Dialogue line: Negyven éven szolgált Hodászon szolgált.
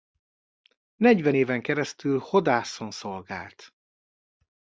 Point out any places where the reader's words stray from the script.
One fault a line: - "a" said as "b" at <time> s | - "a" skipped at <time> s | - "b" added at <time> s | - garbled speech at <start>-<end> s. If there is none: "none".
- "szolgált" said as "keresztül" at 1.6 s